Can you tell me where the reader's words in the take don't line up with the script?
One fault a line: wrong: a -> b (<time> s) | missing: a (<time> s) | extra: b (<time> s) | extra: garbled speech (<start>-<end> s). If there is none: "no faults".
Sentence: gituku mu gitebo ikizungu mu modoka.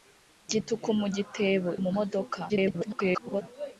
missing: ikizungu (1.7 s)
extra: garbled speech (2.5-3.4 s)